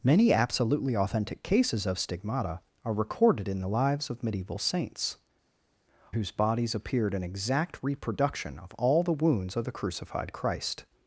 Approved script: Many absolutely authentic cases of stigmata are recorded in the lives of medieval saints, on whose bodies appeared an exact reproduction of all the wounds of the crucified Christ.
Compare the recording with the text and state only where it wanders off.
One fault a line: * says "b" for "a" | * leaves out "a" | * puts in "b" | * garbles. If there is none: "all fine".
* leaves out "on"